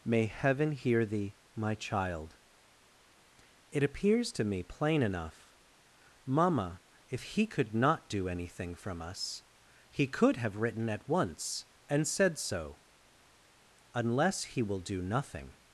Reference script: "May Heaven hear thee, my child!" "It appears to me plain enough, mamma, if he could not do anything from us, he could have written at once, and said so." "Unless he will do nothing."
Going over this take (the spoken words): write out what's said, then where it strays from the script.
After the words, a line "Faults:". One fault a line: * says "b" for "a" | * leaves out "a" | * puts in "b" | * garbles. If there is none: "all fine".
"May Heaven hear thee, my child!" "It appears to me plain enough, mamma, if he could not do anything from us, he could have written at once, and said so." "Unless he will do nothing."
Faults:
all fine